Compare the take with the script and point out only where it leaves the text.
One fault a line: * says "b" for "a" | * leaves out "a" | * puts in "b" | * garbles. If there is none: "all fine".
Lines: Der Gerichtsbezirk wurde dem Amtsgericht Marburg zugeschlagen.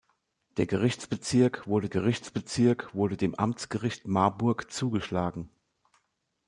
* puts in "Gerichtsbezirk wurde"